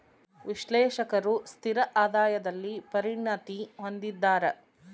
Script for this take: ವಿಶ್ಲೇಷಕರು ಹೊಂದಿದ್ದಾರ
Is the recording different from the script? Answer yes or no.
yes